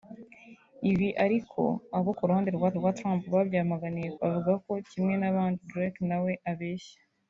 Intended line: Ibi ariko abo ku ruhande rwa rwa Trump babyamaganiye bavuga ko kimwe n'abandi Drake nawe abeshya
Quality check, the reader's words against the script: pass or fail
pass